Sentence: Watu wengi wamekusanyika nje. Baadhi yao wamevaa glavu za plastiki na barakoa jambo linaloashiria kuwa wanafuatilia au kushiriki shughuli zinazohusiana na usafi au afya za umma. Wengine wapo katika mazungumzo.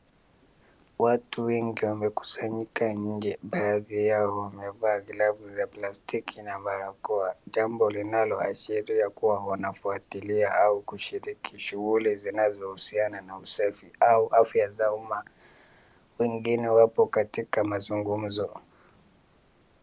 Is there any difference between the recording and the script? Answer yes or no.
no